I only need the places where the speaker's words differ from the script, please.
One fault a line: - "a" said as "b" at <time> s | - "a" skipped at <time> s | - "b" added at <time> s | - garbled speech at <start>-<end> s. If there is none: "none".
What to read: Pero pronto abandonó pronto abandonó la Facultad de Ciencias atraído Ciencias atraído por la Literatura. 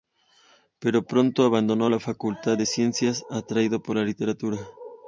- "pronto abandonó" skipped at 1.9 s
- "Ciencias atraído" skipped at 3.8 s